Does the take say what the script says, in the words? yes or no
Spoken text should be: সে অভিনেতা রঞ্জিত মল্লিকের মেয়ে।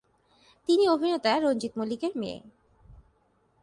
no